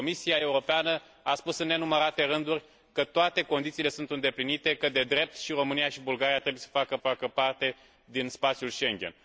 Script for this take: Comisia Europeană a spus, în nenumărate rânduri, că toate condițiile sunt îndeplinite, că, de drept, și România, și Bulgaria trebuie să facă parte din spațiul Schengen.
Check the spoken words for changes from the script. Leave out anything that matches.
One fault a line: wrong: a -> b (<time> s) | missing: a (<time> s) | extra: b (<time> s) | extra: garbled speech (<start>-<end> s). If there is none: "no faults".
extra: facă (7.0 s)